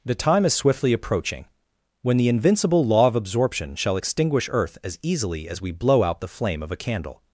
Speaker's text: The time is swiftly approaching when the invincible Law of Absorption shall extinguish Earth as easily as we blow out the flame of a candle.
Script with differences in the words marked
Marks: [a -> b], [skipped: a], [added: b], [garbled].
The time is swiftly approaching when the invincible Law of Absorption shall extinguish Earth as easily as we blow out the flame of a candle.